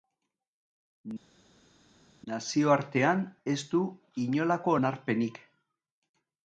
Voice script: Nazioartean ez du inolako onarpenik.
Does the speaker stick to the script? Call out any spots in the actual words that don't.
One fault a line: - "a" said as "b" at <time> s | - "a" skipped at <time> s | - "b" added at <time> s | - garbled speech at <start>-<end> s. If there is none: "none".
none